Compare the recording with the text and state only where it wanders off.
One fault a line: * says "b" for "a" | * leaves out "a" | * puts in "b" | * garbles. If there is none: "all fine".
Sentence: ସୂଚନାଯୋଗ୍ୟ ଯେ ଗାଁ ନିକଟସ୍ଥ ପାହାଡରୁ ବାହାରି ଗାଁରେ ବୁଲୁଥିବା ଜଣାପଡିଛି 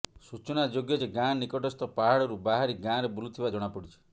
all fine